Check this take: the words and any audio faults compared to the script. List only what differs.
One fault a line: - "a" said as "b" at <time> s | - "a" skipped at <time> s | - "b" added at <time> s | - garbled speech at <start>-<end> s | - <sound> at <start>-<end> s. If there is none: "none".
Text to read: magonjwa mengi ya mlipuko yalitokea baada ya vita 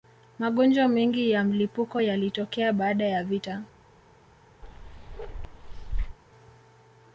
- bark at 4.6-6.2 s